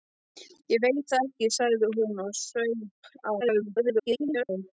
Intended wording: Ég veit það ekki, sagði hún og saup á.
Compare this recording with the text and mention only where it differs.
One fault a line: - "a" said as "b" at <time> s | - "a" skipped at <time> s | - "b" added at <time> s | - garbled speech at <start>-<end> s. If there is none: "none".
- garbled speech at 3.4-4.5 s